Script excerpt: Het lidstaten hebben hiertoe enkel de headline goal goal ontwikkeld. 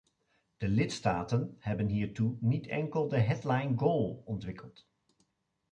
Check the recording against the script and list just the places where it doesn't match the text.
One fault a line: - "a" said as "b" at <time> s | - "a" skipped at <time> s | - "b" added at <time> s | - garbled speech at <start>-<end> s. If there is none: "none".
- "Het" said as "De" at 0.6 s
- "niet" added at 2.4 s
- "goal" skipped at 4.2 s